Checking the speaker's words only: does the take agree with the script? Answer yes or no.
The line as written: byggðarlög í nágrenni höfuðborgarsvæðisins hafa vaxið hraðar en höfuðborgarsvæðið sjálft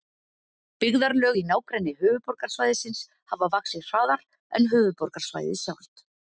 yes